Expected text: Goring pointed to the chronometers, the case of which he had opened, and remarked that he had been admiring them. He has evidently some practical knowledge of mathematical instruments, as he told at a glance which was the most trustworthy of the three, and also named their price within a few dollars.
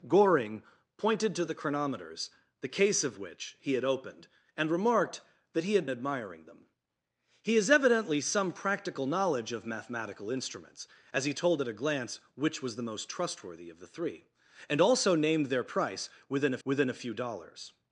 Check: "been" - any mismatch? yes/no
yes